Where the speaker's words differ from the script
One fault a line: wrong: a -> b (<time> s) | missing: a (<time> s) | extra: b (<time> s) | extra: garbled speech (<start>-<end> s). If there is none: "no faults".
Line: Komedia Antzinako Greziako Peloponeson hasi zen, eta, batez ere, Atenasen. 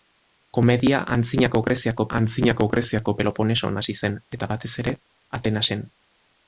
extra: Antzinako Greziako (2.2 s)